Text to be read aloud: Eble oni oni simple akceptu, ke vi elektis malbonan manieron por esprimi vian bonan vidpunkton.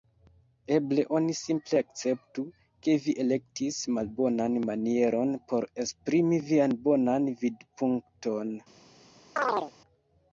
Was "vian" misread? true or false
false